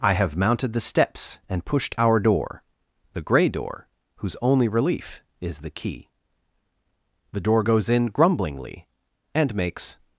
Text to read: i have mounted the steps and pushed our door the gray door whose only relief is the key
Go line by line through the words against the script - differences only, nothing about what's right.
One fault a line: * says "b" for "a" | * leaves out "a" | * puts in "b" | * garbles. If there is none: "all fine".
* puts in "the door goes in grumblingly and makes"